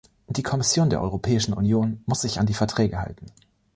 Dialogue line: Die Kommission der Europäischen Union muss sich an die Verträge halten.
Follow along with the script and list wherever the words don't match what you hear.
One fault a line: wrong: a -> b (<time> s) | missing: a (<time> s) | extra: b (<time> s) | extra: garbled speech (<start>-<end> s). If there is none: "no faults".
no faults